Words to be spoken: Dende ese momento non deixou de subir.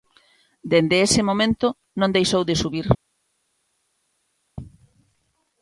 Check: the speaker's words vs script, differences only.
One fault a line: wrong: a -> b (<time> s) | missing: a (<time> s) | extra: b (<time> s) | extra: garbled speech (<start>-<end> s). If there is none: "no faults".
no faults